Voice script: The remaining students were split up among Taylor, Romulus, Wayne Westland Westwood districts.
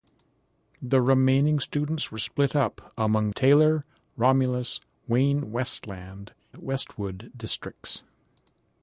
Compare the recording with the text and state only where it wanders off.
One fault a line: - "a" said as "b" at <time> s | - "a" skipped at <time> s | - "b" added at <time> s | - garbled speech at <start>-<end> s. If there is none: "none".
none